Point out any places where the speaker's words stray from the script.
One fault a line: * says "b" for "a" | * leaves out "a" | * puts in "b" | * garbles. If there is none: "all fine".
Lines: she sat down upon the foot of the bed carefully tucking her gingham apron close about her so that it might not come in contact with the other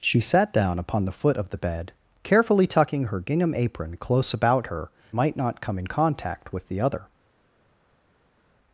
* leaves out "so that it"